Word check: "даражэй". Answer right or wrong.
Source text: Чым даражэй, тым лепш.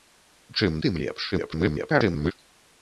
wrong